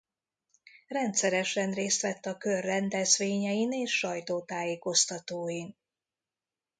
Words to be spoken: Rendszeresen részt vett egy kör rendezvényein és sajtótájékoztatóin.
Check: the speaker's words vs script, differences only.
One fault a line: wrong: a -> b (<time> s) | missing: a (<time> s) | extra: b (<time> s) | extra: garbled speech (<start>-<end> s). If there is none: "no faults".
wrong: egy -> a (2.2 s)